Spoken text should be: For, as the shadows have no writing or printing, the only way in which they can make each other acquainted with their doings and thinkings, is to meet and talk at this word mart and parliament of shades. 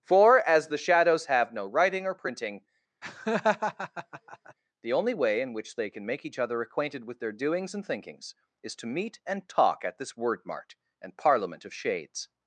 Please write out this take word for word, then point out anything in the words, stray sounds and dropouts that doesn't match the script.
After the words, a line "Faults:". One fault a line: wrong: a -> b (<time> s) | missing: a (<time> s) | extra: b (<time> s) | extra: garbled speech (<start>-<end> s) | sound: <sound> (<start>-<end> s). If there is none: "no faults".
For, as the shadows have no writing or printing, the only way in which they can make each other acquainted with their doings and thinkings, is to meet and talk at this word mart and parliament of shades.
Faults:
sound: laugh (3.0-4.5 s)